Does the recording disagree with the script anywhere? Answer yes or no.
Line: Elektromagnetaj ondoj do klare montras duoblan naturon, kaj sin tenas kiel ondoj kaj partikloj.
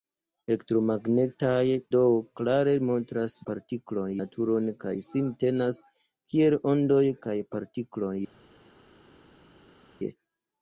yes